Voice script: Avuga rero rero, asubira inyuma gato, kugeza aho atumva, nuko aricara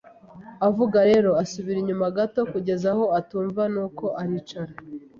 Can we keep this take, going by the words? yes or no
no